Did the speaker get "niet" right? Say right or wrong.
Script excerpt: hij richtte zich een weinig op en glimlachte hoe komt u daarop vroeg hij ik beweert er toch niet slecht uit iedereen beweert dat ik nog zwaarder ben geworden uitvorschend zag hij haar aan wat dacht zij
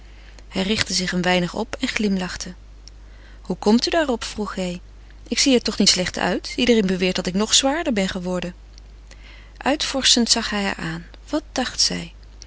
right